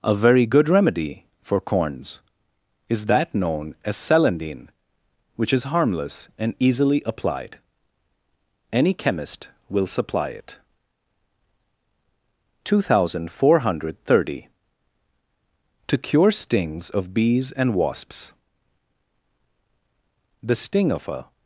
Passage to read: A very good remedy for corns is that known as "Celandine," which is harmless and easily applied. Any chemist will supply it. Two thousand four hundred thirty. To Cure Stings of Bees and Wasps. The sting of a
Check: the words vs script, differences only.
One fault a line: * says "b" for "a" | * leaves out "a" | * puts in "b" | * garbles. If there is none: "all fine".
all fine